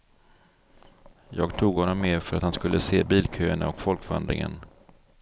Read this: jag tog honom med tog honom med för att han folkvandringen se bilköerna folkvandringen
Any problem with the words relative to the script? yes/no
yes